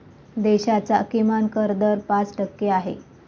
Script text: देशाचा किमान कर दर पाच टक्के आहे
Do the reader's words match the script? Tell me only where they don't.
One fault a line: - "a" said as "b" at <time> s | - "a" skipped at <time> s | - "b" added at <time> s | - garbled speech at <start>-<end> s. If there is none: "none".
none